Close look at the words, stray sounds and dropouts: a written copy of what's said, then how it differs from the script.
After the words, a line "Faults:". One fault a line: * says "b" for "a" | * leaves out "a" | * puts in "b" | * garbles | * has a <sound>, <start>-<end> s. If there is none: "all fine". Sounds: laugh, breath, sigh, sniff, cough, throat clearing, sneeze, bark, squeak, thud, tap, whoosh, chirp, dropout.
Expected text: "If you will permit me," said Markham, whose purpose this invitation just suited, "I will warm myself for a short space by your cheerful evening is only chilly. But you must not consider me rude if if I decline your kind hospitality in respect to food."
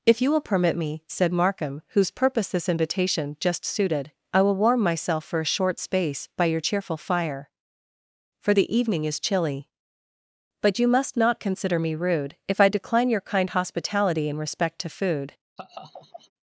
"If you will permit me," said Markham, whose purpose this invitation just suited, "I will warm myself for a short space by your cheerful fire; for the evening is chilly. But you must not consider me rude if I decline your kind hospitality in respect to food."
Faults:
* puts in "fire for the"
* leaves out "only"
* leaves out "if"
* has a laugh, 15.6-16.3 s